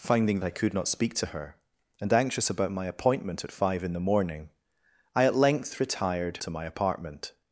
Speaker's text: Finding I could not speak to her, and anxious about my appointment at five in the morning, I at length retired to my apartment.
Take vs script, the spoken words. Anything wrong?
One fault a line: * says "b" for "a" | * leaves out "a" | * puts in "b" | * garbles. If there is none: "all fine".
all fine